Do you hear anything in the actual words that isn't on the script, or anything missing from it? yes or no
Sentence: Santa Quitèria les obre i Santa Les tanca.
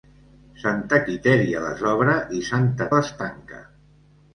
no